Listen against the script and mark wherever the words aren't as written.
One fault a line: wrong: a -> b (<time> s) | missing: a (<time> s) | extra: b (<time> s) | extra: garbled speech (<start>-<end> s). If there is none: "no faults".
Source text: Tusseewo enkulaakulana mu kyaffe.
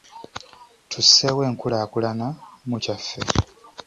no faults